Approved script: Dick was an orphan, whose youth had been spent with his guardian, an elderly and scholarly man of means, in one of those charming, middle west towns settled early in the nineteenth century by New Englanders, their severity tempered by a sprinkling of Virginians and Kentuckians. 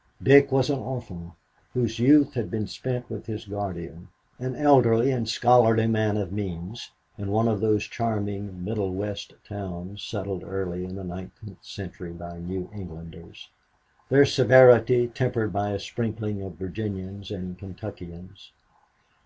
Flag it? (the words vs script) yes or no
no